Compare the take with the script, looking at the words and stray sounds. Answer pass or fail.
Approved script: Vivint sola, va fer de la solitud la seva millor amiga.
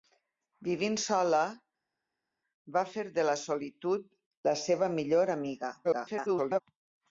fail